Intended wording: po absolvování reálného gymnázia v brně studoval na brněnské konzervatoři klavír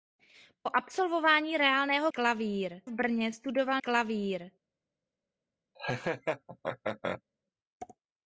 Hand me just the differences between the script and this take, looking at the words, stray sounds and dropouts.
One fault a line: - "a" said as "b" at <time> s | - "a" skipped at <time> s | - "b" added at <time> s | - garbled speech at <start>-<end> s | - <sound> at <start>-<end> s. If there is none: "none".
- "gymnázia" said as "klavír" at 2.1 s
- "na brněnské konzervatoři" skipped at 3.8 s
- laugh at 5.8-7.2 s